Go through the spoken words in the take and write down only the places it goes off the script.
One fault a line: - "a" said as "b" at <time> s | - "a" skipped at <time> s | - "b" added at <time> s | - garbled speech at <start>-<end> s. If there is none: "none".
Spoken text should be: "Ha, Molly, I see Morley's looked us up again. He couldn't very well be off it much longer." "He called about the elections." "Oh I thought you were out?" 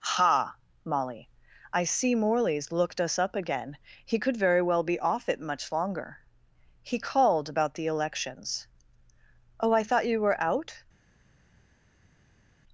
- "couldn't" said as "could" at 4.2 s